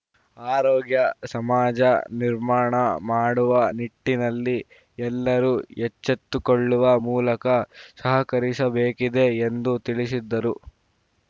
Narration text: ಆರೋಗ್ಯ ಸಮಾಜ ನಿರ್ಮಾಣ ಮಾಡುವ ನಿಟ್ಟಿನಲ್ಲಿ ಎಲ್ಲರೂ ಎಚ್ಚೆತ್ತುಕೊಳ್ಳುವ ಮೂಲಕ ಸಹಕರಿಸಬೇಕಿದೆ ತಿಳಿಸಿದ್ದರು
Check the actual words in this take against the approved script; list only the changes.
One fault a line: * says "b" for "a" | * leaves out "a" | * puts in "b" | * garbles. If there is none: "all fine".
* puts in "ಎಂದು"